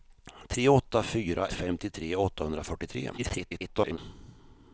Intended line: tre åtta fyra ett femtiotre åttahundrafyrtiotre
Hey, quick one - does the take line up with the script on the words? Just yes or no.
no